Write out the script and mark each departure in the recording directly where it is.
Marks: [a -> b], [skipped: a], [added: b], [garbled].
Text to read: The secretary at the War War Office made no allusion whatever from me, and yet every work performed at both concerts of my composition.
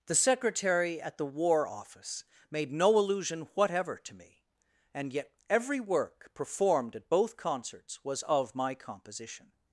The secretary at the War [skipped: War] Office made no allusion whatever [from -> to] me, and yet every work performed at both concerts [added: was] of my composition.